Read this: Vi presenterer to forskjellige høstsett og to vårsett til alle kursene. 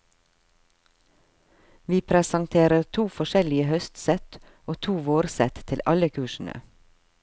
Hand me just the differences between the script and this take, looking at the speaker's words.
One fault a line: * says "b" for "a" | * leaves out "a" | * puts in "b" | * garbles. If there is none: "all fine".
all fine